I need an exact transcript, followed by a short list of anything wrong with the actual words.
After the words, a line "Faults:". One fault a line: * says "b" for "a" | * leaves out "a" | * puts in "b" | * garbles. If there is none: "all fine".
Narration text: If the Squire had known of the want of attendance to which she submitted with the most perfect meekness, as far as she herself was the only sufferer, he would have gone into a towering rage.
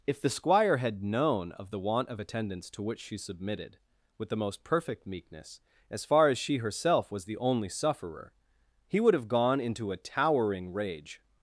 If the Squire had known of the want of attendance to which she submitted with the most perfect meekness, as far as she herself was the only sufferer, he would have gone into a towering rage.
Faults:
all fine